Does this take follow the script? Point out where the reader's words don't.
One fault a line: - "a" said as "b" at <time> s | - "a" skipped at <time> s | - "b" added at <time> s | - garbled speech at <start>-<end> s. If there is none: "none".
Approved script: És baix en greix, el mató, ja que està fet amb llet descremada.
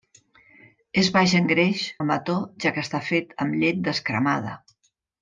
none